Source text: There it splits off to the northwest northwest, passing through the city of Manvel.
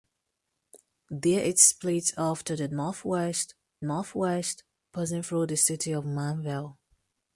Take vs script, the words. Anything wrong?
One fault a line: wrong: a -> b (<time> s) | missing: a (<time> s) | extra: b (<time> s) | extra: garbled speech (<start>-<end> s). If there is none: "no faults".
no faults